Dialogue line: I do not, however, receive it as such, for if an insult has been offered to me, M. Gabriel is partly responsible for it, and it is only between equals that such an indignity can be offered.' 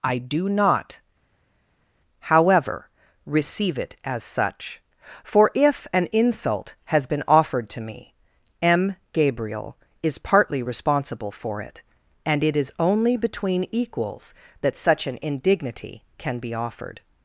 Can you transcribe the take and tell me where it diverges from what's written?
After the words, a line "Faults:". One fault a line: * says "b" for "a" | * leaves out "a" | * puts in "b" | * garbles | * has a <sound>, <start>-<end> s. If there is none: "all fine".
I do not, however, receive it as such, for if an insult has been offered to me, M. Gabriel is partly responsible for it, and it is only between equals that such an indignity can be offered.'
Faults:
all fine